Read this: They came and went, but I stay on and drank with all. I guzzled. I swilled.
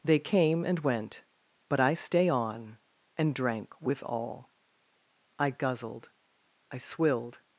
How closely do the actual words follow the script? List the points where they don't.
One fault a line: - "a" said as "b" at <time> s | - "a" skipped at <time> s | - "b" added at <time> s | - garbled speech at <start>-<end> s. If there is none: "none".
none